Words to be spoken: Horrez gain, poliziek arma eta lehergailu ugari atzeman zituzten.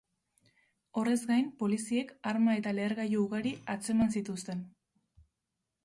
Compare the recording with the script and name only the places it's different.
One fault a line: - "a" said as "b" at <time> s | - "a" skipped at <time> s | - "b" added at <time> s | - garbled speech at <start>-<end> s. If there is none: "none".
none